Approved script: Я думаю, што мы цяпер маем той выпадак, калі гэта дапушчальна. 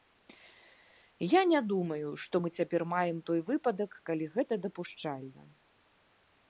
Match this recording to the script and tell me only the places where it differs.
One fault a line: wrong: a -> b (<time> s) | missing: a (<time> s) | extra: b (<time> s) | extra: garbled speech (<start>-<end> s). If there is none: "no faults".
extra: не (1.5 s)